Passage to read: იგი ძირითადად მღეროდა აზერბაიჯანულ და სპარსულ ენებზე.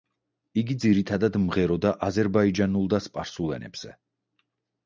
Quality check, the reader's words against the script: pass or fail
pass